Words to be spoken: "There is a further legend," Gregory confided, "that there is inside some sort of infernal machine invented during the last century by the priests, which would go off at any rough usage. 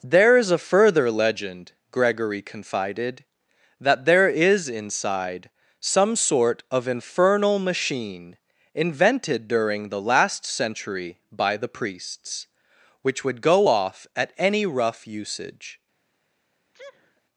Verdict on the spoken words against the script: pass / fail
pass